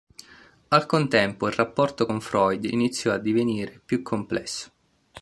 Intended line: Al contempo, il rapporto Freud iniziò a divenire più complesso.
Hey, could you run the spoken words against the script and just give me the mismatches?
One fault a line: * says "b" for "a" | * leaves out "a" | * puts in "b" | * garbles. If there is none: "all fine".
* puts in "con"